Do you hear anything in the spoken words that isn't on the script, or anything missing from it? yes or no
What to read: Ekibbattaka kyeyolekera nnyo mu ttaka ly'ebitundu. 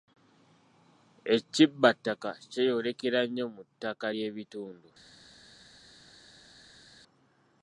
no